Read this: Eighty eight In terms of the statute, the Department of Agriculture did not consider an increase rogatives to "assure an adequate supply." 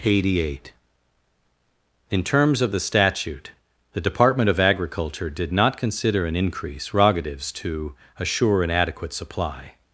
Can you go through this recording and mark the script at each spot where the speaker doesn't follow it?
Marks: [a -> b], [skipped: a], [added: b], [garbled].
Eighty eight In terms of the statute, the Department of Agriculture did not consider an increase rogatives to "assure an adequate supply."